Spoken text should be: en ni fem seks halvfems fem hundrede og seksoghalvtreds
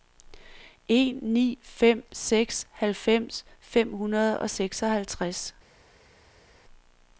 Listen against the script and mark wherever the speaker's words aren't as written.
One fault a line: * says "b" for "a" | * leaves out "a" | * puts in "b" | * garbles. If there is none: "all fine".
all fine